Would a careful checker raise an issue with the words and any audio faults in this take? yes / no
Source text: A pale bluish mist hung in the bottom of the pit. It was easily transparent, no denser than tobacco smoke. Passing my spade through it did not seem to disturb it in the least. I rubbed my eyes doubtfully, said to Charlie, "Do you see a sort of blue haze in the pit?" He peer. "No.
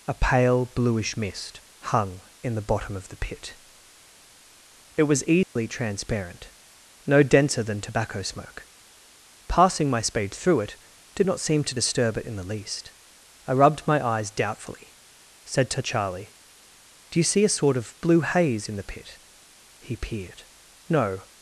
yes